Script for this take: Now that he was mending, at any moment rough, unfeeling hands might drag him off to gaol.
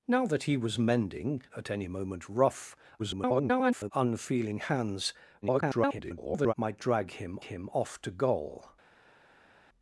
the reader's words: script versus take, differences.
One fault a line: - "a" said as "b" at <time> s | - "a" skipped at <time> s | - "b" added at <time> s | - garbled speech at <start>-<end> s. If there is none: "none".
- garbled speech at 3.0-3.9 s
- garbled speech at 5.4-6.5 s
- "him" added at 7.4 s